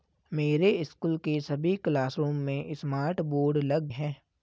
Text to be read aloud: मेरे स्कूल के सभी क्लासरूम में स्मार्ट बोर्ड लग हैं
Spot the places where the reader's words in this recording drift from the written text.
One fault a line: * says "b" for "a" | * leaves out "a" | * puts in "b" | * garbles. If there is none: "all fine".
all fine